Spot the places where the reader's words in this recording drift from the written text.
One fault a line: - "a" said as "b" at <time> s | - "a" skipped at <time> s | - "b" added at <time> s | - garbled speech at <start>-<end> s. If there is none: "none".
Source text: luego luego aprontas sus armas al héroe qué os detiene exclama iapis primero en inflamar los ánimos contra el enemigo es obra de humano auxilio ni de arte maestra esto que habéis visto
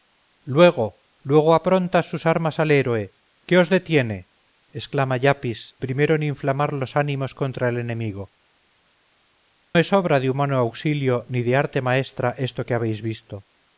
none